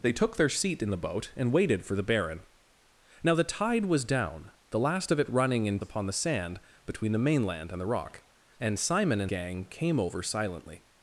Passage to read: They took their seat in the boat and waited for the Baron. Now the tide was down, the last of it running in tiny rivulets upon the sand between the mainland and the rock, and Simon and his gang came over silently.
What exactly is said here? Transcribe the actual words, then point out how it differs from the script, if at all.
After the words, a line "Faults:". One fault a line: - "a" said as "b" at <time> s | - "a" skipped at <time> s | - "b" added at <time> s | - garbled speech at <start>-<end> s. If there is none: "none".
They took their seat in the boat and waited for the Baron. Now the tide was down, the last of it running in upon the sand between the mainland and the rock, and Simon and gang came over silently.
Faults:
- "tiny rivulets" skipped at 5.8 s
- "his" skipped at 9.3 s